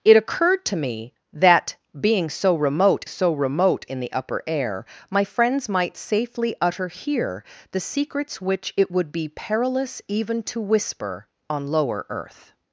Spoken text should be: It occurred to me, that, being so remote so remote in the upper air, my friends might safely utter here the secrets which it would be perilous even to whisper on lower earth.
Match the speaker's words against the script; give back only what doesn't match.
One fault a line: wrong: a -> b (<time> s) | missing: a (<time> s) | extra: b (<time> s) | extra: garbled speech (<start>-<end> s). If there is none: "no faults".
no faults